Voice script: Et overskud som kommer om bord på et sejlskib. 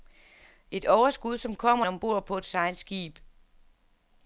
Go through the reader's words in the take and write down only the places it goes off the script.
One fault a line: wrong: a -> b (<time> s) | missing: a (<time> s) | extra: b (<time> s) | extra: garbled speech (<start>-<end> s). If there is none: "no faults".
no faults